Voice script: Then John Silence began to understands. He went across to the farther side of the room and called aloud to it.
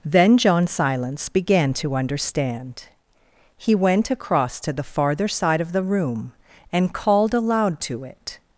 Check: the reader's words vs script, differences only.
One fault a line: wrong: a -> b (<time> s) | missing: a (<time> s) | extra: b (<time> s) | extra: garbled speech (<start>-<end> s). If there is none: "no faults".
wrong: understands -> understand (1.9 s)